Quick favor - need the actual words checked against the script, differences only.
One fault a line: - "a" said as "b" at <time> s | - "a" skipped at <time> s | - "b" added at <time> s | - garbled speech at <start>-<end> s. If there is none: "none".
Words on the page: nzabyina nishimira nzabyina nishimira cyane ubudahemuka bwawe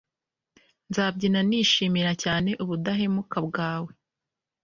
- "nzabyina nishimira" skipped at 2.1 s